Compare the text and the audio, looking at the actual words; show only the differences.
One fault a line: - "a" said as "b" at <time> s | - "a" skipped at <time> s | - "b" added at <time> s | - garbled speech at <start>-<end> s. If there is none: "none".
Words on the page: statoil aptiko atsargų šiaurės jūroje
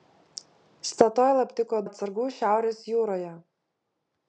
none